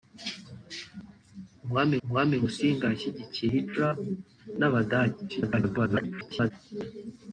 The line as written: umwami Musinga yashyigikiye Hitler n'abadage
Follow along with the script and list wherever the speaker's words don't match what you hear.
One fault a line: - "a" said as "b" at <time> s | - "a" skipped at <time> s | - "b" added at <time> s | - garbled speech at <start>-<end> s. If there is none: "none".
- "umwami" added at 2.0 s
- garbled speech at 5.3-6.5 s